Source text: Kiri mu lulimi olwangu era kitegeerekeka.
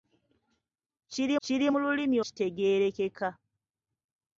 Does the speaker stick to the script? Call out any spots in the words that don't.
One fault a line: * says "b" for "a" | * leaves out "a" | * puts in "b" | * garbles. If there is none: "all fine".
* puts in "kiri"
* leaves out "olwangu era"